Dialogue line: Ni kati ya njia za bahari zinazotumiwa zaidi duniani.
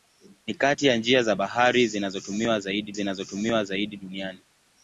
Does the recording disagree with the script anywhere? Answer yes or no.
yes